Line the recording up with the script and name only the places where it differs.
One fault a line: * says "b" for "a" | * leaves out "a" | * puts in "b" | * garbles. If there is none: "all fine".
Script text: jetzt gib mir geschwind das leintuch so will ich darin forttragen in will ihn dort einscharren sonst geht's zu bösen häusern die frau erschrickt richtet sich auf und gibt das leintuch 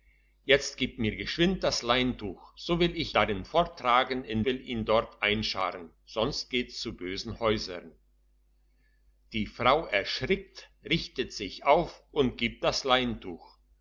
all fine